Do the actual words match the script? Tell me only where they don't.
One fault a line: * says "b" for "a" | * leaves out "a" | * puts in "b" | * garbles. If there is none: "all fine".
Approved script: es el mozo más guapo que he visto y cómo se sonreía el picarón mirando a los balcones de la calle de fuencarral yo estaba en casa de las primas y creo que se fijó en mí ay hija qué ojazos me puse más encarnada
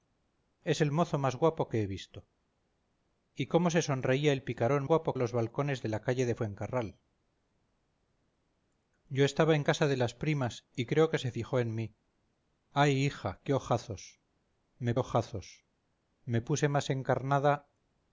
* says "guapo" for "mirando"
* puts in "ojazos me"